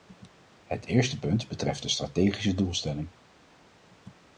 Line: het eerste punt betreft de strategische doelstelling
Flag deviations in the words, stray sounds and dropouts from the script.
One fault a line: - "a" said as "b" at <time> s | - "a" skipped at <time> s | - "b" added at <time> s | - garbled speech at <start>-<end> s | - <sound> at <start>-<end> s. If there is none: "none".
none